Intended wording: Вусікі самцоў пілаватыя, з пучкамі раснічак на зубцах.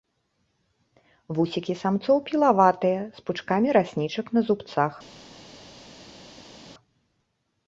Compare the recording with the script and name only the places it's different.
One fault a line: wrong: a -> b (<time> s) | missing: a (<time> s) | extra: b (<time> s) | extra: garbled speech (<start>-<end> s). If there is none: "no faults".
no faults